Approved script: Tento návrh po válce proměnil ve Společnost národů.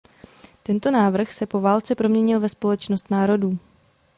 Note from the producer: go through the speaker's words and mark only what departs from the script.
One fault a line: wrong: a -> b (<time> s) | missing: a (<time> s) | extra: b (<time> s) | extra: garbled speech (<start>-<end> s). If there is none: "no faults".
extra: se (1.3 s)